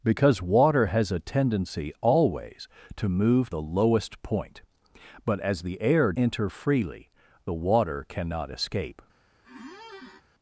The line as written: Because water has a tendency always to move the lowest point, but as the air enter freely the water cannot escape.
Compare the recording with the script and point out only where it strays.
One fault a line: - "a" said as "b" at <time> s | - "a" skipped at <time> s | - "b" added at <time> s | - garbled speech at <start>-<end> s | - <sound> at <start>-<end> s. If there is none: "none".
- squeak at 9.4-10.2 s